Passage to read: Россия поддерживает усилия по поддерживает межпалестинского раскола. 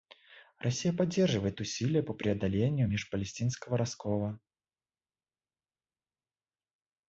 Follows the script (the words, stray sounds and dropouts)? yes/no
no